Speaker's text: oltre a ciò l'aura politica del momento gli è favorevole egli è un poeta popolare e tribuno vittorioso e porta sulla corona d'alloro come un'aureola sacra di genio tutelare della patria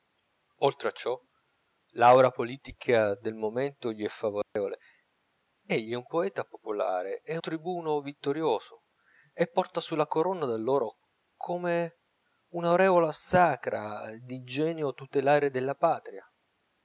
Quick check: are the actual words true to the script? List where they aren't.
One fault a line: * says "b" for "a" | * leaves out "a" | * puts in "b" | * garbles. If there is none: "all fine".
all fine